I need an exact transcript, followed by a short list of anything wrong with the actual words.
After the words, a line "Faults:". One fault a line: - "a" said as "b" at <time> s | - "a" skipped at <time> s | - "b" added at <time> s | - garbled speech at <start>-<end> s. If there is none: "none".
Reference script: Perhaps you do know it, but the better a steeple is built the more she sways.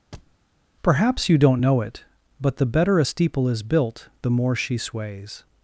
Perhaps you don't know it, but the better a steeple is built the more she sways.
Faults:
- "do" said as "don't" at 1.4 s